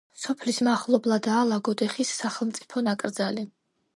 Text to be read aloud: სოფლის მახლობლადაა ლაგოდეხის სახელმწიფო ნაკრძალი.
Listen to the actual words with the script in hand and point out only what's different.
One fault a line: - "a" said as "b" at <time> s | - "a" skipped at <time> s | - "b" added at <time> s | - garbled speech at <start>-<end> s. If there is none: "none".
none